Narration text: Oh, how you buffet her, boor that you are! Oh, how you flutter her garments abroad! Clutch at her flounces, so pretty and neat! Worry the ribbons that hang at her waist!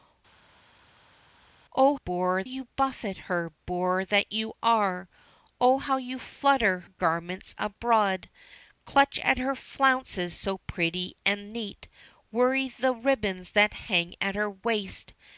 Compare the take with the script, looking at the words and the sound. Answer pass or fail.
fail